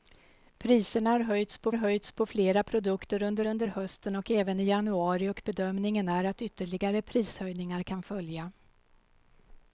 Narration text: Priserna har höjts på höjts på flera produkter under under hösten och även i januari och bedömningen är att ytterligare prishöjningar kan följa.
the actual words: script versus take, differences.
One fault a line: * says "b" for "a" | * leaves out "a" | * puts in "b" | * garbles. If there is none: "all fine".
all fine